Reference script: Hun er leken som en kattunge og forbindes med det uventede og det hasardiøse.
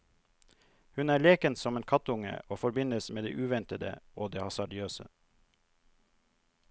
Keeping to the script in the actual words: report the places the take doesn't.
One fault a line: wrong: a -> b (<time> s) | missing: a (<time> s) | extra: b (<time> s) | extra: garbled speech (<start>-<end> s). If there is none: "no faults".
no faults